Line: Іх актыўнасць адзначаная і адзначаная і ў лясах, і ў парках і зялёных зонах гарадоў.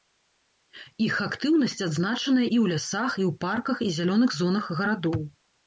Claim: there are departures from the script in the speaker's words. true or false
true